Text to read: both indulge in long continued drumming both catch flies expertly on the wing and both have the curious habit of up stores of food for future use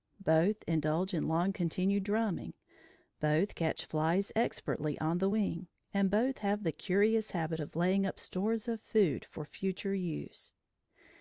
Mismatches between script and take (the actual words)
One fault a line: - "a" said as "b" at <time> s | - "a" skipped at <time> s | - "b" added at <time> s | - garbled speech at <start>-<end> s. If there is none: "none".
- "laying" added at 7.7 s